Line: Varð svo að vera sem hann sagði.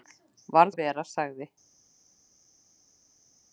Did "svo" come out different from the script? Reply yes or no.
yes